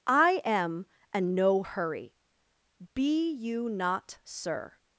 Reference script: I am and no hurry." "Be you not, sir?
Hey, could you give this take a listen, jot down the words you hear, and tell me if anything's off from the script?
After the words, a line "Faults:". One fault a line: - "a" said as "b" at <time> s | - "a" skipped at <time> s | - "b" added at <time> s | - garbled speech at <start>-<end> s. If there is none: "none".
I am and no hurry." "Be you not, sir?
Faults:
none